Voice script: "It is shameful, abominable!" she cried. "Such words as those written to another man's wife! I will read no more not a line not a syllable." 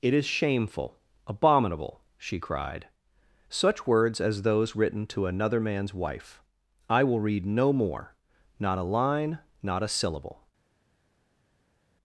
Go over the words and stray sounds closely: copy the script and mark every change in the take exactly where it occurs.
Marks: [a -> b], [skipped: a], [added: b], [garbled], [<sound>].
"It is shameful, abominable!" she cried. "Such words as those written to another man's wife! I will read no more not a line not a syllable."